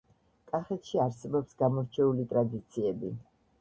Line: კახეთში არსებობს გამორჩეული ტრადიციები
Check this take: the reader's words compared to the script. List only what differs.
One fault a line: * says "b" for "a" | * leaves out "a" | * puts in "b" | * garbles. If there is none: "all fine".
all fine